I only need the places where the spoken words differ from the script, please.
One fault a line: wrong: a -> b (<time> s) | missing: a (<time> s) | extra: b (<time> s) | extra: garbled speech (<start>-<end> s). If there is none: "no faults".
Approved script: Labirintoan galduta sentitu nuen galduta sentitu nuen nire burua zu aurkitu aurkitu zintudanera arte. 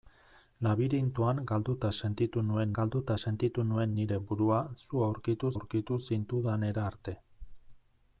no faults